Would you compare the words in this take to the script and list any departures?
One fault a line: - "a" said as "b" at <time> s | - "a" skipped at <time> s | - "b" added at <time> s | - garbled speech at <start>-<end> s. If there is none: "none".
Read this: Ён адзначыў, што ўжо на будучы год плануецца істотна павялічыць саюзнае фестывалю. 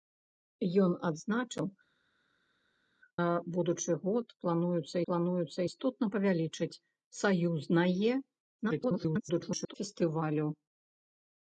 - "што ўжо" skipped at 1.6 s
- "плануецца" added at 5.1 s
- garbled speech at 8.6-9.7 s